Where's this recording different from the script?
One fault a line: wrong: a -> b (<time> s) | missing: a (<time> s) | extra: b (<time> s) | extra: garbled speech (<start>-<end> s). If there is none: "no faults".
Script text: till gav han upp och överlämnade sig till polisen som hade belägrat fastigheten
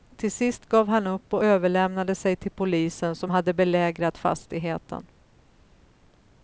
extra: sist (0.3 s)